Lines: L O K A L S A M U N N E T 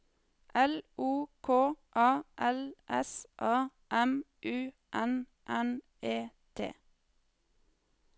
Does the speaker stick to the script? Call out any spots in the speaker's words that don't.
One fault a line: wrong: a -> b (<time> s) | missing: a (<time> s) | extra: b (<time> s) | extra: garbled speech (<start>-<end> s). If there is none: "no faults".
no faults